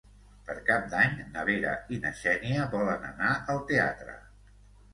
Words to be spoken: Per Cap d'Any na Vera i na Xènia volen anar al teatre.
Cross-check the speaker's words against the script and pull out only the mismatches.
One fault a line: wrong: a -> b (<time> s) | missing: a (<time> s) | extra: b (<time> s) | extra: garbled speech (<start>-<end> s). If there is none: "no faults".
no faults